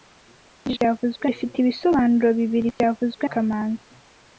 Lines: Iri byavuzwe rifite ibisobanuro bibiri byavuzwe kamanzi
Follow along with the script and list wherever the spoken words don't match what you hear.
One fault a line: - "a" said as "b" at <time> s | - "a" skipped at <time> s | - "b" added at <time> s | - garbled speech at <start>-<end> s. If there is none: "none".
none